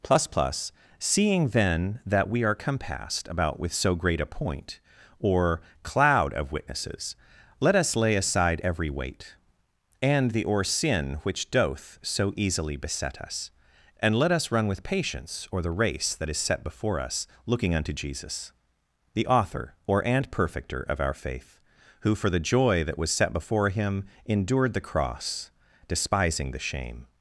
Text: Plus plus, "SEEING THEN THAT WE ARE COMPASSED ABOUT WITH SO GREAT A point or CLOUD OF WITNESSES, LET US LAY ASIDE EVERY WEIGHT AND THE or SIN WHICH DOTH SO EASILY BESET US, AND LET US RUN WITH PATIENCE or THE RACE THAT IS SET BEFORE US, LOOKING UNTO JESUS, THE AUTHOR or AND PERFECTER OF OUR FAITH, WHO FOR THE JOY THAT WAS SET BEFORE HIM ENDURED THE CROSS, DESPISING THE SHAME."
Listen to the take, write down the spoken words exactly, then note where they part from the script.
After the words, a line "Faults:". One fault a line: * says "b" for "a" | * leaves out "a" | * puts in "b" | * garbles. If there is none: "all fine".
Plus plus, "SEEING THEN THAT WE ARE COMPASSED ABOUT WITH SO GREAT A point or CLOUD OF WITNESSES, LET US LAY ASIDE EVERY WEIGHT AND THE or SIN WHICH DOTH SO EASILY BESET US, AND LET US RUN WITH PATIENCE or THE RACE THAT IS SET BEFORE US, LOOKING UNTO JESUS, THE AUTHOR or AND PERFECTER OF OUR FAITH, WHO FOR THE JOY THAT WAS SET BEFORE HIM ENDURED THE CROSS, DESPISING THE SHAME."
Faults:
all fine